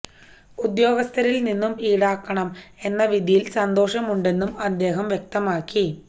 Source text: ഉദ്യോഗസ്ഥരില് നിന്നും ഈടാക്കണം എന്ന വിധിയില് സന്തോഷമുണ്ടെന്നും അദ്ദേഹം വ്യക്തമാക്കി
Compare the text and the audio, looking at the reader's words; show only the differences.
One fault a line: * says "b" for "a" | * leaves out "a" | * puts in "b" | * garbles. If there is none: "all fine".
all fine